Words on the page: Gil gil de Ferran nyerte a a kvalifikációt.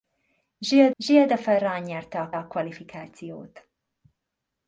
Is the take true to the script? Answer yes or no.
yes